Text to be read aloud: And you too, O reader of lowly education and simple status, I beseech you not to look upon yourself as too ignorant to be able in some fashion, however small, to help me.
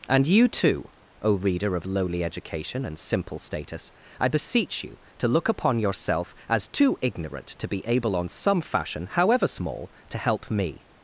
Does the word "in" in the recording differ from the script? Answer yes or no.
yes